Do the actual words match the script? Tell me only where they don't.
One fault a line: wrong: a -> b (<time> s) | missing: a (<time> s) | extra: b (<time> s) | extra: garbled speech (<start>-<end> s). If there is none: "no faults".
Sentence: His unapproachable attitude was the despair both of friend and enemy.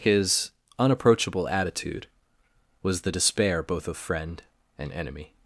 no faults